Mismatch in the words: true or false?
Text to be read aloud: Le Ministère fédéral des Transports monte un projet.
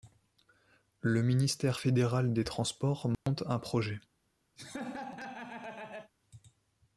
false